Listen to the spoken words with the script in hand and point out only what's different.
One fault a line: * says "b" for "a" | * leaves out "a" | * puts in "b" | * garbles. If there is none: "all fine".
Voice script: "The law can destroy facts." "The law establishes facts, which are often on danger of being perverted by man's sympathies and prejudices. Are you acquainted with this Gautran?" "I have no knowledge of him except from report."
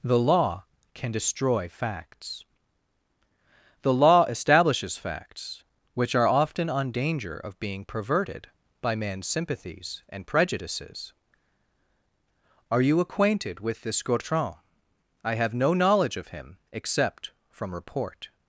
all fine